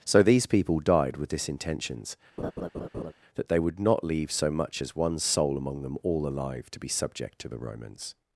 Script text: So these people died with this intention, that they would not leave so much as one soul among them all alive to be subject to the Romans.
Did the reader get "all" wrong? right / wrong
right